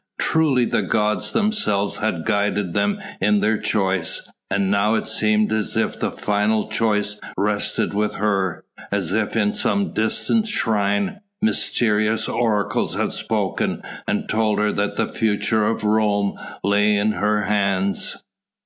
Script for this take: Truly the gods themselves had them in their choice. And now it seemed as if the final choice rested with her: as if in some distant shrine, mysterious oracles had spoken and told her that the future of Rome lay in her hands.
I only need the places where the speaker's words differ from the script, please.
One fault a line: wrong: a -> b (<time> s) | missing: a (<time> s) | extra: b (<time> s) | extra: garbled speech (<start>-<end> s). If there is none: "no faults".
extra: guided (2.2 s)